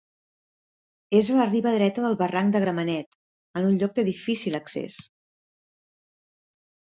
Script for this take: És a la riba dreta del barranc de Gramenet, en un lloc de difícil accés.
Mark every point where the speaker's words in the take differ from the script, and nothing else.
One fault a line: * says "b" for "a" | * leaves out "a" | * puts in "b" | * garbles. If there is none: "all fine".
all fine